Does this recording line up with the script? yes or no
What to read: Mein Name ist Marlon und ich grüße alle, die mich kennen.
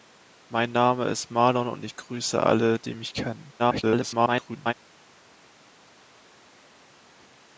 no